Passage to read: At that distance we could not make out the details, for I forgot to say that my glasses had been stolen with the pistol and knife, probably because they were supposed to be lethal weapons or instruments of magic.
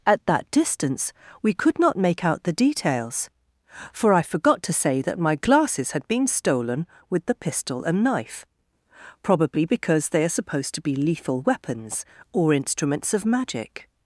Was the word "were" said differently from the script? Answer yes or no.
yes